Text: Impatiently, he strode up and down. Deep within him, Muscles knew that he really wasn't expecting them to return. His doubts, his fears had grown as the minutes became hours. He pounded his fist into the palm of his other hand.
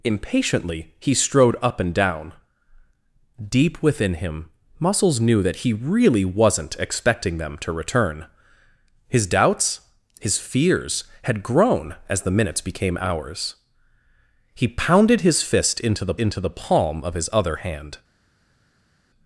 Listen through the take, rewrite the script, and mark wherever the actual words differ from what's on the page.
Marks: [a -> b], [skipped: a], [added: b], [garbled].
Impatiently, he strode up and down. Deep within him, Muscles knew that he really wasn't expecting them to return. His doubts, his fears had grown as the minutes became hours. He pounded his fist into the [added: into the] palm of his other hand.